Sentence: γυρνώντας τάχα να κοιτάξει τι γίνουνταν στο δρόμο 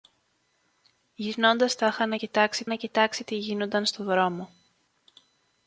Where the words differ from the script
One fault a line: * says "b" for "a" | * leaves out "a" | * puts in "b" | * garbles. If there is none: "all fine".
* puts in "να κοιτάξει"